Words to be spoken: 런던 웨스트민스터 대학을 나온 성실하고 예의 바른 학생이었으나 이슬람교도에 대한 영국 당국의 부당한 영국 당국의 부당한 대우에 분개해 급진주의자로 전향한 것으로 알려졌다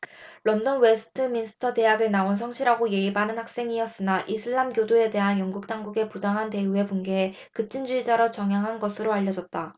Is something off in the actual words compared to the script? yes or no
yes